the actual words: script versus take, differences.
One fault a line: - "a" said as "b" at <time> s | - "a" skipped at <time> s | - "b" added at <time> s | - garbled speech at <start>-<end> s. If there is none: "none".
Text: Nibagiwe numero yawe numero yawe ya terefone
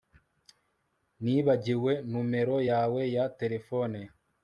- "numero yawe" skipped at 3.0 s